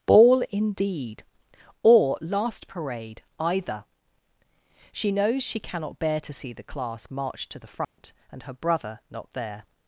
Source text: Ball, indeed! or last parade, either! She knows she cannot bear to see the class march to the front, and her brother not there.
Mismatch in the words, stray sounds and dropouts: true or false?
true